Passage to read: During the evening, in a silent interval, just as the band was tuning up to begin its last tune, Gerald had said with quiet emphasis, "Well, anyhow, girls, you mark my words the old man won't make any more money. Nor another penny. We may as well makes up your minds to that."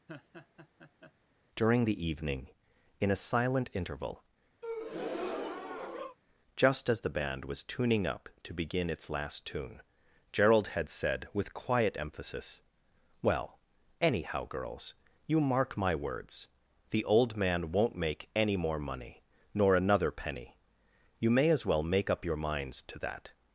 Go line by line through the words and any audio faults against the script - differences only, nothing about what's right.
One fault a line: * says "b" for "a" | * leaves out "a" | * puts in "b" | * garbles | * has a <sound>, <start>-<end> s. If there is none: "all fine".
* has a laugh, 0.1-1.1 s
* has a breath, 4.6-6.2 s
* says "You" for "We"
* says "make" for "makes"